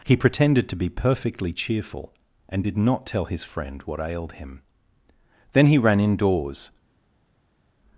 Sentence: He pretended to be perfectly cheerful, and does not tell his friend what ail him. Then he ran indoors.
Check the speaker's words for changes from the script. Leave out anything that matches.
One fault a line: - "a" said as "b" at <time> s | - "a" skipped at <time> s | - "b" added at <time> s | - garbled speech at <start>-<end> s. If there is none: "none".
- "does" said as "did" at 2.6 s
- "ail" said as "ailed" at 4.0 s